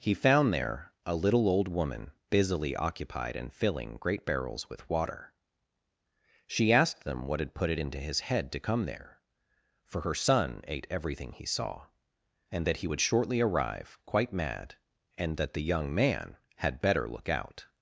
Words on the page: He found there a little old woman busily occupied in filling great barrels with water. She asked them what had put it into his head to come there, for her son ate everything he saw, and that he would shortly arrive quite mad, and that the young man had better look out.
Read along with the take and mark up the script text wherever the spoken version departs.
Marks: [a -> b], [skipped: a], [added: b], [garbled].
He found there a little old woman busily occupied in filling great barrels with water. She asked them what had put it into his head to come there, for her son ate everything he saw, and that he would shortly arrive quite mad, and that the young man had better look out.